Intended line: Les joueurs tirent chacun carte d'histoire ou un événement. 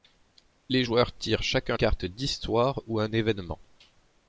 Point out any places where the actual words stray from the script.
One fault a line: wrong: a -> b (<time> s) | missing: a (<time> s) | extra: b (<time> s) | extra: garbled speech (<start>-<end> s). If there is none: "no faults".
no faults